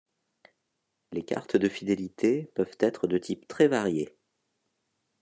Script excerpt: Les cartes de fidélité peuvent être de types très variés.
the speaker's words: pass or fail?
pass